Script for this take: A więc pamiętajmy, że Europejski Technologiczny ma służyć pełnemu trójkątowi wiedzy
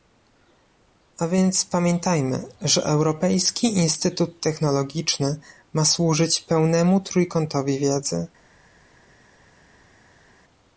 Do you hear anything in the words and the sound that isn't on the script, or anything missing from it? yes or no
yes